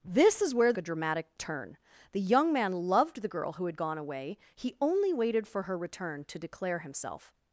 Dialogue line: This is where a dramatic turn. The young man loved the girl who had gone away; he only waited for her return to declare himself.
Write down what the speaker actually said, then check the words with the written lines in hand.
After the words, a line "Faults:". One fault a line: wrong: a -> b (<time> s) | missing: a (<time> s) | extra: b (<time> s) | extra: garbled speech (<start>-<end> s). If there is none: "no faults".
This is where a dramatic turn. The young man loved the girl who had gone away; he only waited for her return to declare himself.
Faults:
no faults